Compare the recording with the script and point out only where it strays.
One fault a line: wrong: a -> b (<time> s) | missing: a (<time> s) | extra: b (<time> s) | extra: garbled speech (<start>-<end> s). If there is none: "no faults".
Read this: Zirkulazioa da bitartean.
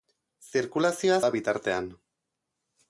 no faults